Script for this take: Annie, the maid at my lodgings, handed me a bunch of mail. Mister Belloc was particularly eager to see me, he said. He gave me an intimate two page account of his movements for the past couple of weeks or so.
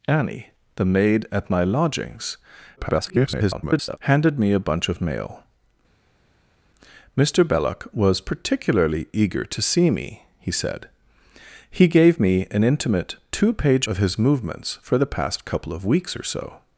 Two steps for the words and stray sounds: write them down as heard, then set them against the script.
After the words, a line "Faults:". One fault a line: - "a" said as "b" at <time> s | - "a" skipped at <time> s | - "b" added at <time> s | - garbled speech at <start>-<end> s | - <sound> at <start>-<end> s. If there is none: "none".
Annie, the maid at my lodgings, [garbled] handed me a bunch of mail. Mister Belloc was particularly eager to see me, he said. He gave me an intimate two page of his movements for the past couple of weeks or so.
Faults:
- garbled speech at 2.8-4.0 s
- "account" skipped at 13.9 s